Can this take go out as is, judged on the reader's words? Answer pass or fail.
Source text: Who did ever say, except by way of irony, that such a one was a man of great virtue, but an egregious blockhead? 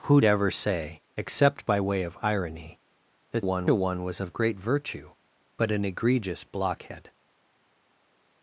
fail